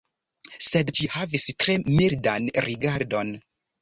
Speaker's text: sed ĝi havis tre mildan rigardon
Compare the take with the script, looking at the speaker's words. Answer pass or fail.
pass